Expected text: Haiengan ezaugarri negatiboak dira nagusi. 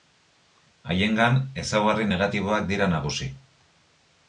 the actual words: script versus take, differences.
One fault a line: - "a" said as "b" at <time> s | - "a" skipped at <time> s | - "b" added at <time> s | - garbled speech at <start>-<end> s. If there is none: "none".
none